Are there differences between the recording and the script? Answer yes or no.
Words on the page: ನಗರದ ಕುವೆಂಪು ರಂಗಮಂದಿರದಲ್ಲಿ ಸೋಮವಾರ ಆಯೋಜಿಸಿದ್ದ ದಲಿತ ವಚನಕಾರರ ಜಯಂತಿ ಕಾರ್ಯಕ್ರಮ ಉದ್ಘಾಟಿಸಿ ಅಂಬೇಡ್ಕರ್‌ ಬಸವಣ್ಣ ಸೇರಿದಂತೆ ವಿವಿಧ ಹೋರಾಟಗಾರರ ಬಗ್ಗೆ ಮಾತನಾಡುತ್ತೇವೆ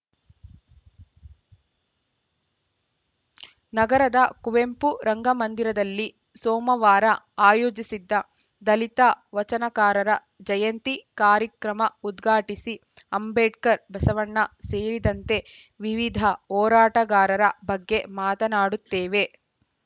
no